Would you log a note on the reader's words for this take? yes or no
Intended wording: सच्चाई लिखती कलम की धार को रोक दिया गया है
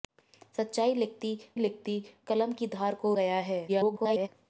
yes